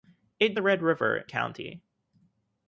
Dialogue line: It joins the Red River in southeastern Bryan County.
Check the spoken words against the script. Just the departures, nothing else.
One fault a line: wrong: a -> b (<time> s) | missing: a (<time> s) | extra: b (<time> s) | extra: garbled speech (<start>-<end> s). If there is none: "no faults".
missing: joins (0.6 s)
missing: in southeastern Bryan (1.2 s)